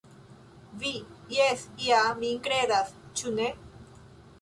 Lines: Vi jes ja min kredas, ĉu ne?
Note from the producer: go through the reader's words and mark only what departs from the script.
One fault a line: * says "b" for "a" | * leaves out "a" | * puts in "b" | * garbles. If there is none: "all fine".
all fine